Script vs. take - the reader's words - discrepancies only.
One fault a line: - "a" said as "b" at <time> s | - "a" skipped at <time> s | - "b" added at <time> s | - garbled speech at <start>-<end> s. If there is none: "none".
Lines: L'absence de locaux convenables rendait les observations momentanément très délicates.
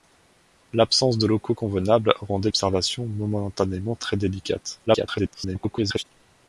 - "les" skipped at 2.5 s
- garbled speech at 4.9-6.0 s